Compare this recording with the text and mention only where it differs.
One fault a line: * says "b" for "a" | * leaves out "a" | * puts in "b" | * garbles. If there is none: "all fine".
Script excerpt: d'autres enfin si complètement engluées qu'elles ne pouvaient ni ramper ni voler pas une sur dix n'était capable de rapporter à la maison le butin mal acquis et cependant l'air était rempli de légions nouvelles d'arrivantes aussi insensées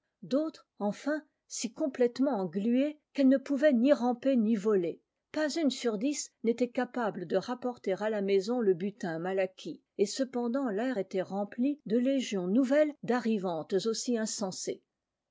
all fine